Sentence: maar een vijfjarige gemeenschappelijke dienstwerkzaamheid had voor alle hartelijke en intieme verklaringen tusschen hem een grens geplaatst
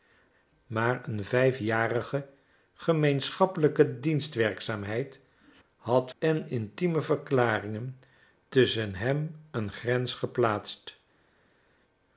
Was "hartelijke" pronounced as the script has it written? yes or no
no